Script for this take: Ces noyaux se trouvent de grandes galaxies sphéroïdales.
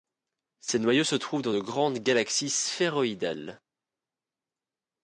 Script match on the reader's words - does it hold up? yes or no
no